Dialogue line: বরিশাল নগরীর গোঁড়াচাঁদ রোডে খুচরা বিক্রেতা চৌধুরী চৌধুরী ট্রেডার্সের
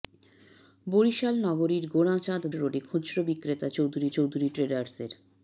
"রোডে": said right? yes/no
yes